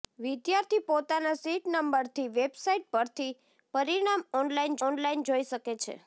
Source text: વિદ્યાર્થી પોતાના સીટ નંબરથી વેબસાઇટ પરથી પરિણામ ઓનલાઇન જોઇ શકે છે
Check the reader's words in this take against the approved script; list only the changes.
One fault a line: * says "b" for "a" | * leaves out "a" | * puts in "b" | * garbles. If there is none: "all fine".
* puts in "ઓનલાઇન"